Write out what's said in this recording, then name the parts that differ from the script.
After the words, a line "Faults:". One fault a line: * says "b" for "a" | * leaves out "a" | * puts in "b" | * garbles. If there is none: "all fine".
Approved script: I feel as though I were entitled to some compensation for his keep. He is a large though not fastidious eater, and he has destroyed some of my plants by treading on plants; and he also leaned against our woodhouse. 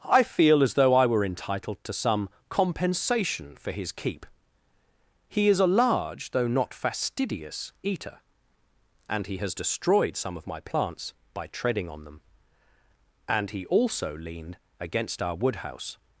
I feel as though I were entitled to some compensation for his keep. He is a large though not fastidious eater, and he has destroyed some of my plants by treading on them; and he also leaned against our woodhouse.
Faults:
* says "them" for "plants"